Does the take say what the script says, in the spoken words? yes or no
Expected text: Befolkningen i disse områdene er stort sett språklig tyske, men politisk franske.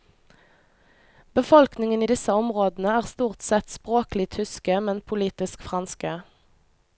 yes